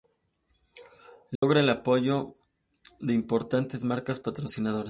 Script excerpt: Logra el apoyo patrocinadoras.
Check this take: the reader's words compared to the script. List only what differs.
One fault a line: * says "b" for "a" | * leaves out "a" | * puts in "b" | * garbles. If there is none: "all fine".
* puts in "de importantes marcas"